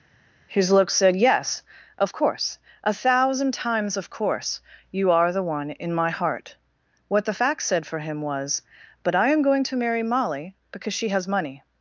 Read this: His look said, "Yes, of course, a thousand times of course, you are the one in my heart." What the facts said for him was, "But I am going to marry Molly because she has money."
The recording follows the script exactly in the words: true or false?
true